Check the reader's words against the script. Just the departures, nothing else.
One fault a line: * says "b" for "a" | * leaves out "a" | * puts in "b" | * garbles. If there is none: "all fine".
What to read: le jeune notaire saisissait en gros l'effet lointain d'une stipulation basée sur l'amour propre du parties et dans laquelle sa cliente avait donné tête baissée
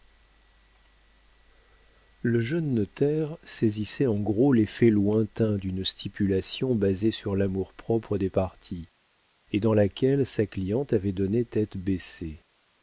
* says "des" for "du"